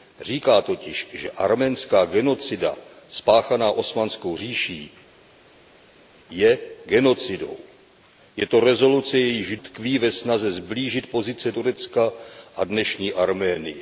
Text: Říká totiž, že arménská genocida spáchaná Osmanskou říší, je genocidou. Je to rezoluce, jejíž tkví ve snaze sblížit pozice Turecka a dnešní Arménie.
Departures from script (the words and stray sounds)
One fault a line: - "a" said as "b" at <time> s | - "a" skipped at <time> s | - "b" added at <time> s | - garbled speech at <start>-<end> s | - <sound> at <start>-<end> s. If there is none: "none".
none